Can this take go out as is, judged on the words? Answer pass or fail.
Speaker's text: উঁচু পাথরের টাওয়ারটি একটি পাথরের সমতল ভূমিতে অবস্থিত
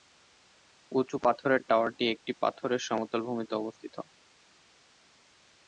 pass